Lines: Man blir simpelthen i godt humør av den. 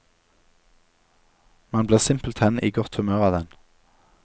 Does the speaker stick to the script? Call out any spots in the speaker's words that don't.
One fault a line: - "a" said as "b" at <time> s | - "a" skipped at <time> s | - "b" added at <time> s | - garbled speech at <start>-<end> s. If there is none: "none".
none